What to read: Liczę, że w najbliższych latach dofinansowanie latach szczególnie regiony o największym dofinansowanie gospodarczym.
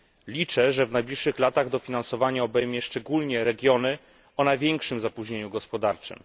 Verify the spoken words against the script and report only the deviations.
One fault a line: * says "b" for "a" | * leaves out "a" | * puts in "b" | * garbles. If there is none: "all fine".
* says "obejmie" for "latach"
* says "zapóźnieniu" for "dofinansowanie"